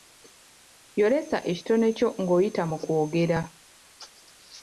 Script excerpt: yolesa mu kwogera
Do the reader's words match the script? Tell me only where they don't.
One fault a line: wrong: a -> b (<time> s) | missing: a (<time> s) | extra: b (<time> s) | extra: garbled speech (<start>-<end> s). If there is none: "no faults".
extra: ekitone kyo ng'oyita (1.5 s)